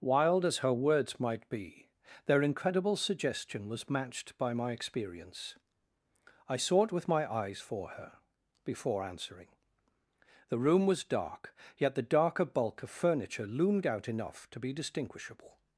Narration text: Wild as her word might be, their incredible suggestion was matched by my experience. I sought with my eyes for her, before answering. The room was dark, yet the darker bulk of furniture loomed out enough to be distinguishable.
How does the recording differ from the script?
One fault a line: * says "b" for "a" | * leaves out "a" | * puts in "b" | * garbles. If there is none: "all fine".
* says "words" for "word"